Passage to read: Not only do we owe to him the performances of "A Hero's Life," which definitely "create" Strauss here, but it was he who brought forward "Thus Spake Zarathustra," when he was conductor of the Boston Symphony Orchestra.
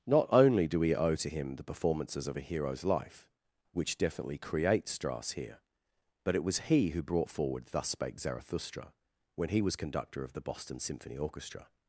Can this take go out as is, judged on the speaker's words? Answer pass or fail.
pass